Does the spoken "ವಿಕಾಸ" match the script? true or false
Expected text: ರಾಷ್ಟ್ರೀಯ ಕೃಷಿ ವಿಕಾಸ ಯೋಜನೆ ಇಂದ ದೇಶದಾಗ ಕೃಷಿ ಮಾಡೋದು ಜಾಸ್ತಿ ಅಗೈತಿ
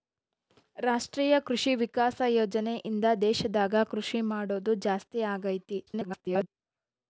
true